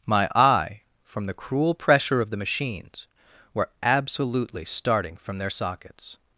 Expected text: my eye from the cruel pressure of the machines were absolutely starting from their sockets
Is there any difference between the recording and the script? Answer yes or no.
no